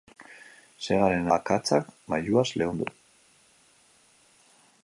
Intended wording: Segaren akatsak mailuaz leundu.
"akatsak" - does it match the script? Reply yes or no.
yes